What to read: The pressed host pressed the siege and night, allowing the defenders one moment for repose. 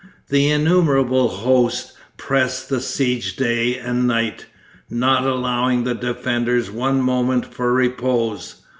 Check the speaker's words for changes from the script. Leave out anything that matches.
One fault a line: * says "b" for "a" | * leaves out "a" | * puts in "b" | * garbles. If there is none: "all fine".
* says "innumerable" for "pressed"
* puts in "day"
* puts in "not"